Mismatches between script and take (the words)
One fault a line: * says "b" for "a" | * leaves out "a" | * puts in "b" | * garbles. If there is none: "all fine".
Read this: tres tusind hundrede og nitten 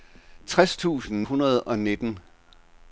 all fine